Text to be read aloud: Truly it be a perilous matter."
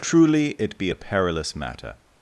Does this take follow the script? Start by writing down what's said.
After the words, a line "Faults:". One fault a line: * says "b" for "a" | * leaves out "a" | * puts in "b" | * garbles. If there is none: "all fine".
Truly it be a perilous matter."
Faults:
all fine